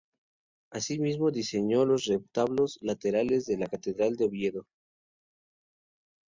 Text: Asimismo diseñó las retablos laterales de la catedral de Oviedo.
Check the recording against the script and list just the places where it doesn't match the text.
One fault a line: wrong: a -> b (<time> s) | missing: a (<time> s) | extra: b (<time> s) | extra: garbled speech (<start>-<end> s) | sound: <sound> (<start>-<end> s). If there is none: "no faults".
wrong: las -> los (1.8 s)